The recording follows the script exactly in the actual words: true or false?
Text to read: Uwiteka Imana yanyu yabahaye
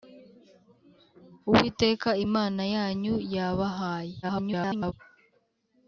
false